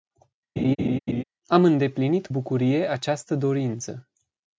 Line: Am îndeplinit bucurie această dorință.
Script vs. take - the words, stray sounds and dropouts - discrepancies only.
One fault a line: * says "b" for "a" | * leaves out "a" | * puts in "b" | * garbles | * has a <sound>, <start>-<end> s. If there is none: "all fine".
* has a laugh, 0.6-1.2 s